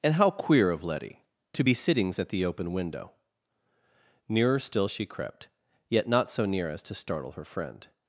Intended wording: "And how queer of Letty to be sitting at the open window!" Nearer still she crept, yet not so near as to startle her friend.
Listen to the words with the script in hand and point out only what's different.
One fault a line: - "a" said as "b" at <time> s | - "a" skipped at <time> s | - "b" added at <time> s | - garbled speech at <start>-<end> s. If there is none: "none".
- "sitting" said as "sittings" at 1.7 s